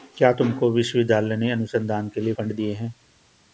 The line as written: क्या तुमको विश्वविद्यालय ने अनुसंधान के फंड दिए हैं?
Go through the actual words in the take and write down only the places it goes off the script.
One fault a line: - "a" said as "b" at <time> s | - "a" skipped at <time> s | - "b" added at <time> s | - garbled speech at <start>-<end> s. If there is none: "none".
- "लिए" added at 2.2 s